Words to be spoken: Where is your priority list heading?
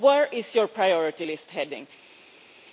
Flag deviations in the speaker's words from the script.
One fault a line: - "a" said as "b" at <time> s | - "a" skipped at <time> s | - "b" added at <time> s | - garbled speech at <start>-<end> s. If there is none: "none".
none